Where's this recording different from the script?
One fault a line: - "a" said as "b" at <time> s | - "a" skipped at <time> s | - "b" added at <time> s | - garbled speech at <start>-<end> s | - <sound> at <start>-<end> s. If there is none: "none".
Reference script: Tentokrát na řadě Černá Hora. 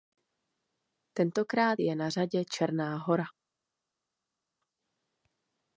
- "je" added at 1.8 s